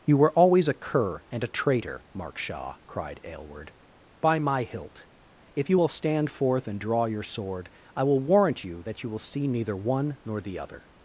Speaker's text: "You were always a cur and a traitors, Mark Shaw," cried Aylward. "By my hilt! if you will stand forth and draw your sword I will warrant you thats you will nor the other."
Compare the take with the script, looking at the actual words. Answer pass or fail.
fail